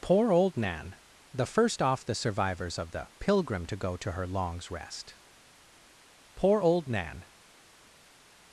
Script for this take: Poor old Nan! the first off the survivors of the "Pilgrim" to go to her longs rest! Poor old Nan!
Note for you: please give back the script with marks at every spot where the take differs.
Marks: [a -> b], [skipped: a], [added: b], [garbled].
Poor old Nan! the first off the survivors of the "Pilgrim" to go to her longs rest! Poor old Nan!